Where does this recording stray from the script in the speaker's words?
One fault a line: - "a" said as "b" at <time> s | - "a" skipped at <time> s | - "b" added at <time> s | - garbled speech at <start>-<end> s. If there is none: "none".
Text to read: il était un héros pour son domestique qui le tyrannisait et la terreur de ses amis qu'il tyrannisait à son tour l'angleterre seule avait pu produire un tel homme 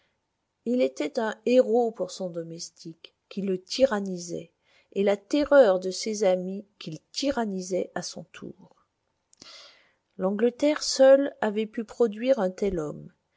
none